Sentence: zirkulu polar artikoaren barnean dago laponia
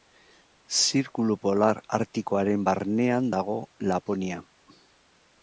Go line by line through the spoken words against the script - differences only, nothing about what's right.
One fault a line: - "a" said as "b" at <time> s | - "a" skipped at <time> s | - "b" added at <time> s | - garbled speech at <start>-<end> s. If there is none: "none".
none